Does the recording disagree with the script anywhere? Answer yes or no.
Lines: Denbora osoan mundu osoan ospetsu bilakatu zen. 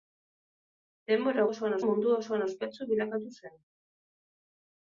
no